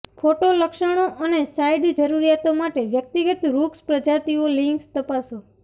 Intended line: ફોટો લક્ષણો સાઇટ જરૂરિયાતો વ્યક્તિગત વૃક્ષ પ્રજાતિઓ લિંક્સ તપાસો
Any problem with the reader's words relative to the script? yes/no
yes